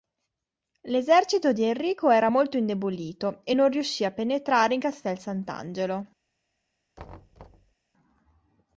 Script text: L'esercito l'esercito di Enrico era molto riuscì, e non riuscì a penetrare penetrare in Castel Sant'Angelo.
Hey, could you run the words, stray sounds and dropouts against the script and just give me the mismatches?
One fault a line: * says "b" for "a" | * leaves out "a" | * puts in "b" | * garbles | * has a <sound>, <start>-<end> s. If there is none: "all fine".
* leaves out "l'esercito"
* says "indebolito" for "riuscì"
* leaves out "penetrare"
* has a thud, 7.0-7.7 s